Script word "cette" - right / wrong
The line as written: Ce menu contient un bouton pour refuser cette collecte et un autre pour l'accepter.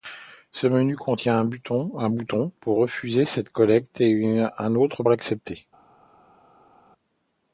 right